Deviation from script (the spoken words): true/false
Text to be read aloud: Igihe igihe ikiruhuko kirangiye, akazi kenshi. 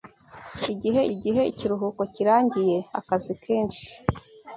false